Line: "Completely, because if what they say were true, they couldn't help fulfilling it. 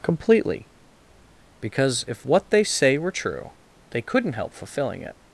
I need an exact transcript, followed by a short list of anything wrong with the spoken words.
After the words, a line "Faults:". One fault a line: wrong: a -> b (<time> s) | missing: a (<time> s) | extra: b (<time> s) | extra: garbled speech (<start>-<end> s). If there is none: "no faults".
"Completely, because if what they say were true, they couldn't help fulfilling it.
Faults:
no faults